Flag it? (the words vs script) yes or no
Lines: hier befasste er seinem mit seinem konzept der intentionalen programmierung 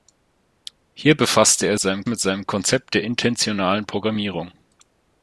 no